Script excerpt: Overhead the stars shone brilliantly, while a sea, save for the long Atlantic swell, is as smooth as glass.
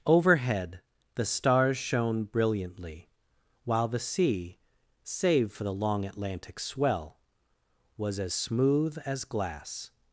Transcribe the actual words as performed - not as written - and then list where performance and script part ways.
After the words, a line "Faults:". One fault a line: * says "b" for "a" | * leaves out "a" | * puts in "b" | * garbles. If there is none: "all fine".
Overhead the stars shone brilliantly, while the sea, save for the long Atlantic swell, was as smooth as glass.
Faults:
* says "the" for "a"
* says "was" for "is"